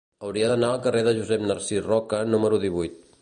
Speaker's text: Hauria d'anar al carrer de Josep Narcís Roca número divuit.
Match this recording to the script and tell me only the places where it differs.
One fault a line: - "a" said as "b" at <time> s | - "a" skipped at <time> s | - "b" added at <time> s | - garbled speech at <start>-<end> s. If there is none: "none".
none